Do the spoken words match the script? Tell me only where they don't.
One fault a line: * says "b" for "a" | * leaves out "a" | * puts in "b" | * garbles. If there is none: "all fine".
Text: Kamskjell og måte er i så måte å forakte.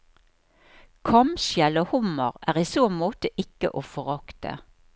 * says "hummer" for "måte"
* puts in "ikke"